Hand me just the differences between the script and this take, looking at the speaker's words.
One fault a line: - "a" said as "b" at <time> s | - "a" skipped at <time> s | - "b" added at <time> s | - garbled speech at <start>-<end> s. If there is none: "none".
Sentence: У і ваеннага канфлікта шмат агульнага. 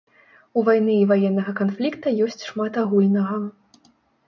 - "вайны" added at 0.7 s
- "ёсць" added at 2.3 s